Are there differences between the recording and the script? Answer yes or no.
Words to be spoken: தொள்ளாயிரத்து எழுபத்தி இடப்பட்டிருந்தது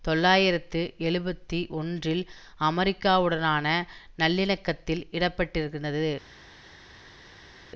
yes